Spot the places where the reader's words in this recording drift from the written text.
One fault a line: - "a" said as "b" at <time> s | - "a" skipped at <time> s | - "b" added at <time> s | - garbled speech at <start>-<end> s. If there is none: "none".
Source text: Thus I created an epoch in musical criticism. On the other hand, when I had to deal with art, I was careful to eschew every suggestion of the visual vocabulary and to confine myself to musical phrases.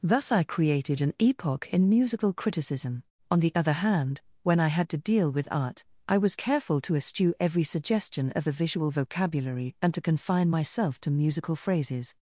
none